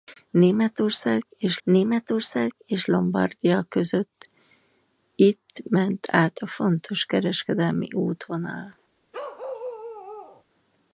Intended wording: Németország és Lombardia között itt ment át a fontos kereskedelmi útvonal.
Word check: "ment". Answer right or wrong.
right